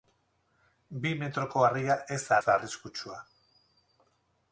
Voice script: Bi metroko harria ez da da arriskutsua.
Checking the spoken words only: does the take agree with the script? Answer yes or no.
yes